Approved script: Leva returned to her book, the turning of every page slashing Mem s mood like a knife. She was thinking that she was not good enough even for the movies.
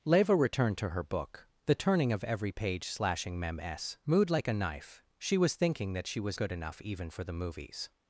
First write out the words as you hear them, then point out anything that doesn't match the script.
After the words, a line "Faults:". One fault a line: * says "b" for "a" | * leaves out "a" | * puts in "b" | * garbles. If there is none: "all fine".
Leva returned to her book, the turning of every page slashing Mem s mood like a knife. She was thinking that she was good enough even for the movies.
Faults:
* leaves out "not"